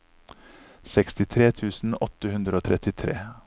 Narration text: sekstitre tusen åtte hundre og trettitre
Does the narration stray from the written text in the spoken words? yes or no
no